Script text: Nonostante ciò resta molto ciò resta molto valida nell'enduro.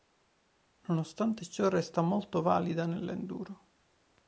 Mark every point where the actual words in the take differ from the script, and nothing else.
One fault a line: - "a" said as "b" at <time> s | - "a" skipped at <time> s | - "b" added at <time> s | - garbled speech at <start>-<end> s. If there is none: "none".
- "ciò resta molto" skipped at 2.4 s